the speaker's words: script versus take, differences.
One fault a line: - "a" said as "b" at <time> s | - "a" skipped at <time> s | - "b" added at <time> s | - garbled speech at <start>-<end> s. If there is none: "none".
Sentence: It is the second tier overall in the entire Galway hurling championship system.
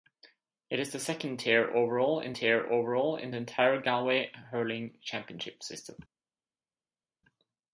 - "tier overall in" added at 2.4 s